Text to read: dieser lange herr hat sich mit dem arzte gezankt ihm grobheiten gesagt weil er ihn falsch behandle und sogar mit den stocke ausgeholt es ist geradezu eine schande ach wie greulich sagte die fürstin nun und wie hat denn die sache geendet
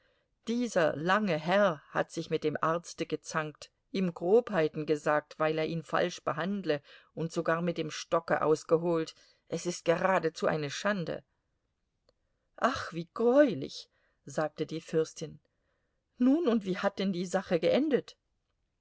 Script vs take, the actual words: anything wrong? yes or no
yes